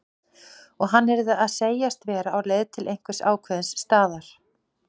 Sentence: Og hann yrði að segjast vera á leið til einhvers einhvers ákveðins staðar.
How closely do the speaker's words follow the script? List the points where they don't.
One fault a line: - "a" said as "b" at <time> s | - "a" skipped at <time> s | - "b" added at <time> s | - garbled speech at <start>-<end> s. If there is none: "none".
- "einhvers" skipped at 3.2 s